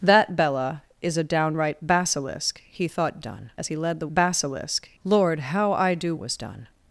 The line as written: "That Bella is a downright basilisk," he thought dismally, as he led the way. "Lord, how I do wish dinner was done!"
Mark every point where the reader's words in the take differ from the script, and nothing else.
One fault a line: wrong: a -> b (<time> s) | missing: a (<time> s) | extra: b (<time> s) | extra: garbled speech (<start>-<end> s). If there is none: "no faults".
wrong: dismally -> done (3.2 s)
wrong: way -> basilisk (4.1 s)
missing: wish dinner (6.1 s)